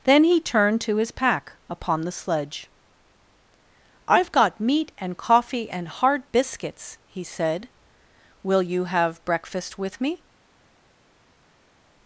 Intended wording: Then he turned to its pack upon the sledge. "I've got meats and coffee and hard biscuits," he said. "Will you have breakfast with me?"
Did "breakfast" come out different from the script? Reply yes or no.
no